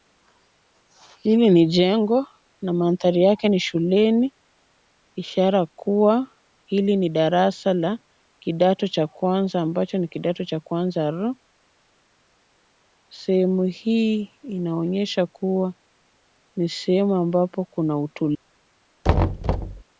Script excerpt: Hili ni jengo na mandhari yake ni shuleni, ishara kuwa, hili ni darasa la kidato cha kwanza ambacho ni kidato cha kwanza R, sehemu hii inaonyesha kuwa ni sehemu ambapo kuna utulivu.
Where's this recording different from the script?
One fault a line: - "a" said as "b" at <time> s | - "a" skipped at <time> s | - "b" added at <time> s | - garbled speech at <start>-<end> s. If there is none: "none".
none